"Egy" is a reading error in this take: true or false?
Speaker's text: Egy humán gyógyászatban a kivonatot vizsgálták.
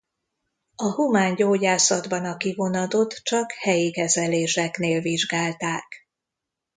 true